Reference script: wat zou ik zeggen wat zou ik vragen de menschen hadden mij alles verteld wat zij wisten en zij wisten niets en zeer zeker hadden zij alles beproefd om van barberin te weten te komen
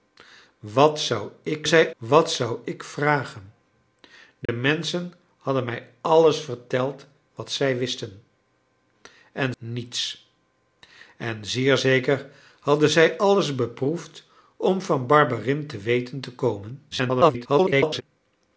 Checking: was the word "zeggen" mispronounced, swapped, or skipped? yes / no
yes